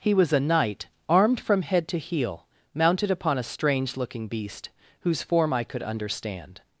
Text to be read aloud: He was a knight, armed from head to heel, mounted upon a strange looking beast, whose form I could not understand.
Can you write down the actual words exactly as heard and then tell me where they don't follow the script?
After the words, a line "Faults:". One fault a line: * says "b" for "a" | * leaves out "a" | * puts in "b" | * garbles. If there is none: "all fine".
He was a knight, armed from head to heel, mounted upon a strange looking beast, whose form I could understand.
Faults:
* leaves out "not"